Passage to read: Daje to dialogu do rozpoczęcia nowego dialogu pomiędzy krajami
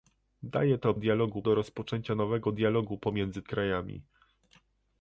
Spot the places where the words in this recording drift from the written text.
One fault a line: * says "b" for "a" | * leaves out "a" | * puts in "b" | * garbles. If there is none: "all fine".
all fine